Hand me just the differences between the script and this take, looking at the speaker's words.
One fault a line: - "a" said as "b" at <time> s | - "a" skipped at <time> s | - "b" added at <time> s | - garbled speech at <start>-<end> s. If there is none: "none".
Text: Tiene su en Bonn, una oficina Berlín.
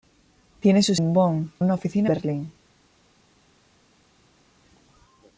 none